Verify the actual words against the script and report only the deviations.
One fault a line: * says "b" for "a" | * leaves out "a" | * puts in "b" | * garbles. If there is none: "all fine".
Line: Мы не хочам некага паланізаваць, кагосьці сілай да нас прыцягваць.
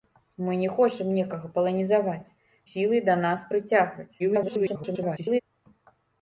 * leaves out "кагосьці"
* garbles